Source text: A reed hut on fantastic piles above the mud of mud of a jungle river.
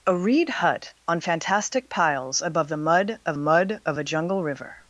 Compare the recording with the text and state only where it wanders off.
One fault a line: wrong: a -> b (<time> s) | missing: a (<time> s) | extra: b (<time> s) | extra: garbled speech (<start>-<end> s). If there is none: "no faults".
no faults